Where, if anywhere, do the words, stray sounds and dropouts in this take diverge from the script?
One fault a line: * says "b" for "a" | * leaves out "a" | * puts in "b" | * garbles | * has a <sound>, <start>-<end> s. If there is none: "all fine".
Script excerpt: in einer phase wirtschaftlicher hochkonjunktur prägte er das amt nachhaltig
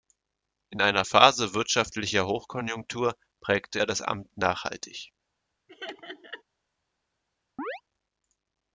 * has a laugh, 5.7-6.4 s
* has a chirp, 7.6-7.8 s